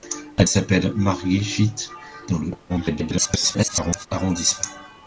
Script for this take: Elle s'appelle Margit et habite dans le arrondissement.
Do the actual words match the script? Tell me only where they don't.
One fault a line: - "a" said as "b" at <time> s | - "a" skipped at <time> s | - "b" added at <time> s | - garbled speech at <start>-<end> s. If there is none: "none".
- "et habite" skipped at 1.7 s
- garbled speech at 2.7-4.1 s